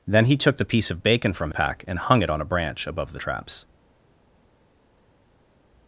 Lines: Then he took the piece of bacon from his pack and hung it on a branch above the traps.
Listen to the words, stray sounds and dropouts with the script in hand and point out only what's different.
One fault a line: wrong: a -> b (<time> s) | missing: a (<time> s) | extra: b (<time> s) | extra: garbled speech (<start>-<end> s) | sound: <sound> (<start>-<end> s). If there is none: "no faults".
missing: his (1.5 s)